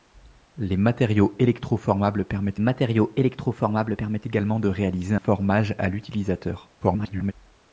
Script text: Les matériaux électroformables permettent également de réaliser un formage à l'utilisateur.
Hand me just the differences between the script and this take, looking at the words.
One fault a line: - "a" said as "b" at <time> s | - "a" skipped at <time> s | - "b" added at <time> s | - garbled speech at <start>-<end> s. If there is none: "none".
- "matériaux électroformables permettent" added at 2.6 s
- "un" skipped at 5.1 s
- garbled speech at 6.8-7.3 s